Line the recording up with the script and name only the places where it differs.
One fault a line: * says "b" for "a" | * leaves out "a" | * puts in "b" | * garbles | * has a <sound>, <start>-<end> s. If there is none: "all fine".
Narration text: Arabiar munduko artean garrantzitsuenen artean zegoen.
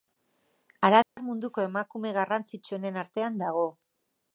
* has a dropout, 1.0-1.2 s
* says "emakume" for "artean"
* says "dago" for "zegoen"